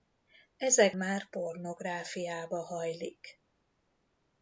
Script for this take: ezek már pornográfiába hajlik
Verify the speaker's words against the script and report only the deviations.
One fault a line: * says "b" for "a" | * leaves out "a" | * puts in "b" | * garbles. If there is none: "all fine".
all fine